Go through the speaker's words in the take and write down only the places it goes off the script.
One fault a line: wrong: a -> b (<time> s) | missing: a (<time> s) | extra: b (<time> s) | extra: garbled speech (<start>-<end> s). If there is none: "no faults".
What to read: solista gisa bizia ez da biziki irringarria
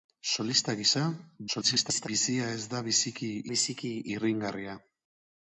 extra: garbled speech (1.5-2.1 s)
extra: biziki (3.5 s)